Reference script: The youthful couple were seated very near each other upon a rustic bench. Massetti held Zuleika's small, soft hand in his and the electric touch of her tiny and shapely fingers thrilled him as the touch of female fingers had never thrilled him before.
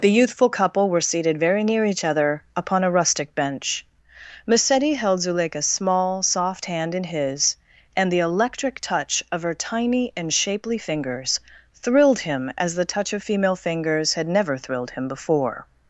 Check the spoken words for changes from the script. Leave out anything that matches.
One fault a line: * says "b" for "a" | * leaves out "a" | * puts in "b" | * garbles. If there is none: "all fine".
all fine